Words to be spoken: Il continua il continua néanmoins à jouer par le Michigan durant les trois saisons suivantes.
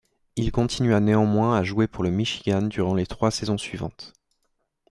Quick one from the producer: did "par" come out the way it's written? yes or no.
no